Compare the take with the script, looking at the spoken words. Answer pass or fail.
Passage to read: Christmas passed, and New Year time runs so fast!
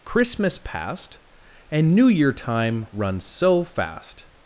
pass